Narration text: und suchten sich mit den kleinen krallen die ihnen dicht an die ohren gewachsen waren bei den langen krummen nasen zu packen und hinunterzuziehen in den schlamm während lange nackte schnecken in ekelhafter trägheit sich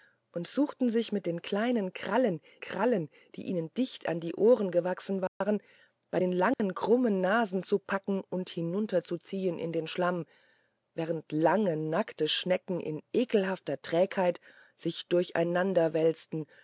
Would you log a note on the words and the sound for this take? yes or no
yes